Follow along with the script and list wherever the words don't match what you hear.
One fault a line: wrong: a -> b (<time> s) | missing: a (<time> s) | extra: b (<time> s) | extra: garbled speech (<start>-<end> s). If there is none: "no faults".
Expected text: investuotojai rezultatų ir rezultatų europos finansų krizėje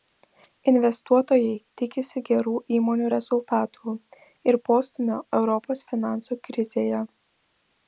extra: tikisi gerų įmonių (1.8 s)
wrong: rezultatų -> postūmio (4.7 s)